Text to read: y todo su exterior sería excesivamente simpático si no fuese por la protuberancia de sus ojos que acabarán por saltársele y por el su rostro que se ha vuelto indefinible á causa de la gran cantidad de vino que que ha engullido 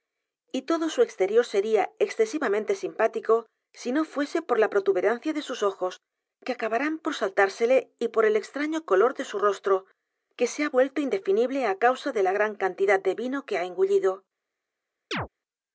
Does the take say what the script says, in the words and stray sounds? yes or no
no